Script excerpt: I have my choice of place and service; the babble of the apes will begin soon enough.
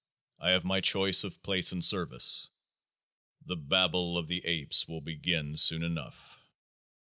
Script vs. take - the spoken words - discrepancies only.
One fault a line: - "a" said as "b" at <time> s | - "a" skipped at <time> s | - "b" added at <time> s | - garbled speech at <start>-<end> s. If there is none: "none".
none